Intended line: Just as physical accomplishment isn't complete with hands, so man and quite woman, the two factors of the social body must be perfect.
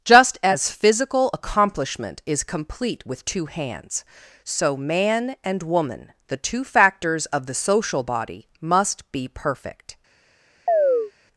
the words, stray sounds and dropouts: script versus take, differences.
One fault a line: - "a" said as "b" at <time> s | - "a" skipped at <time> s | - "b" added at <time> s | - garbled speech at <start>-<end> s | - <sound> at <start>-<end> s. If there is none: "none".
- "isn't" said as "is" at 2.2 s
- "two" added at 3.2 s
- "quite" skipped at 5.6 s
- chirp at 10.7-11.1 s